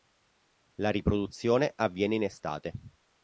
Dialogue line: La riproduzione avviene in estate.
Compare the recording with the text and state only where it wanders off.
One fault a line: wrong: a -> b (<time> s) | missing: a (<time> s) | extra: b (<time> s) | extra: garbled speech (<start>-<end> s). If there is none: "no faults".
no faults